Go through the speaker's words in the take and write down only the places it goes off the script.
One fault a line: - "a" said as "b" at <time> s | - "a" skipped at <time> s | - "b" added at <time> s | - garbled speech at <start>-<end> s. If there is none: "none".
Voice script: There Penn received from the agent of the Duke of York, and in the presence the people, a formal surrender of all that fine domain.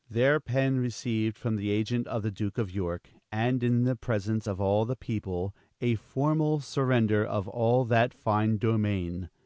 - "of all" added at 4.5 s